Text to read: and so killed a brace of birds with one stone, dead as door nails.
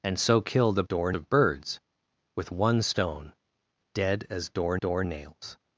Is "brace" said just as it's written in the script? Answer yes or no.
no